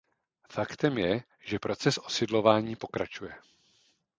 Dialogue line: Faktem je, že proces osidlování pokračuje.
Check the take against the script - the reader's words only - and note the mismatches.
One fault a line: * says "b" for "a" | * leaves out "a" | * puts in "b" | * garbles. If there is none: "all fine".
all fine